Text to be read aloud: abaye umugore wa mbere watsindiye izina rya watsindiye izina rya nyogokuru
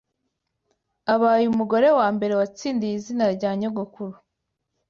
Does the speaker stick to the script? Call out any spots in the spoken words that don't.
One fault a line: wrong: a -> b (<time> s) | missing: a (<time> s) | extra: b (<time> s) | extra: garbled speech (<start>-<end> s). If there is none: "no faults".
missing: watsindiye izina rya (3.5 s)